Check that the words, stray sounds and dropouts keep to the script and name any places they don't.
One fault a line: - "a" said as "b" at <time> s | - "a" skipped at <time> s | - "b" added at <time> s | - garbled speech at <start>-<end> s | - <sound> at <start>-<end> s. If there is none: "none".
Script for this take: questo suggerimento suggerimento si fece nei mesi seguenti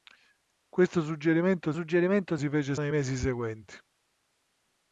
none